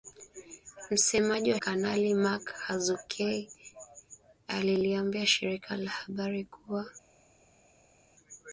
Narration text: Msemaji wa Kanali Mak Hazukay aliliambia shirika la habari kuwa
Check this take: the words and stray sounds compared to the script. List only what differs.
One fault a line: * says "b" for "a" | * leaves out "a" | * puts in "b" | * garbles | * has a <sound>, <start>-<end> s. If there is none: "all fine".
all fine